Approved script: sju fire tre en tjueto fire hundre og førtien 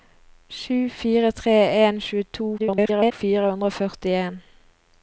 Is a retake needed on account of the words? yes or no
yes